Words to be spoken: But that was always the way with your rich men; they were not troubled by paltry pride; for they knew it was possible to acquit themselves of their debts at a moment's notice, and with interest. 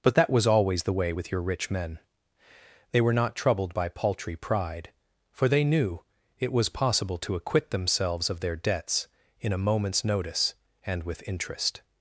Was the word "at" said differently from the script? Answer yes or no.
yes